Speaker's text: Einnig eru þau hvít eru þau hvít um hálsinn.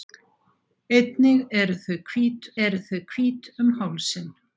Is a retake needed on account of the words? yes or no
no